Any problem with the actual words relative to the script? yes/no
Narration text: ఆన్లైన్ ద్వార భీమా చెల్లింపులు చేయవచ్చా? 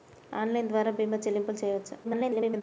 yes